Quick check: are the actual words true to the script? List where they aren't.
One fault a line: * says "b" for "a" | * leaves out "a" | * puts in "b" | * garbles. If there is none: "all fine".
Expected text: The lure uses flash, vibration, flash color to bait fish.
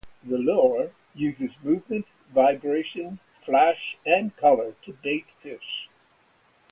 * says "movement" for "flash"
* puts in "and"